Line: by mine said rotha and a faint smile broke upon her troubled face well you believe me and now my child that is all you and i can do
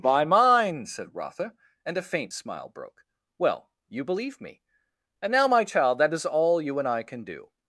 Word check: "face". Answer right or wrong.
wrong